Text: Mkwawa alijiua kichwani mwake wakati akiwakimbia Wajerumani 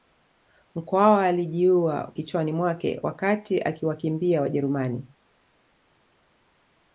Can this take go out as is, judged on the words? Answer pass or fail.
pass